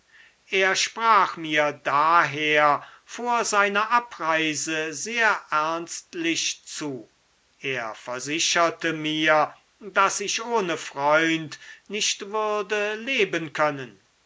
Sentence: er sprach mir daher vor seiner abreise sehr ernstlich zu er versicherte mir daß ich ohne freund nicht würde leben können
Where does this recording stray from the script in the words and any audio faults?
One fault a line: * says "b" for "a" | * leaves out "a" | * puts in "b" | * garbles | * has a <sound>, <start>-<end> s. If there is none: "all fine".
all fine